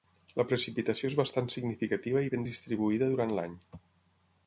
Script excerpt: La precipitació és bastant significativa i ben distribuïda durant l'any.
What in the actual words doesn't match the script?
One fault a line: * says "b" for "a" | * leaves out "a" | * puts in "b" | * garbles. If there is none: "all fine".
all fine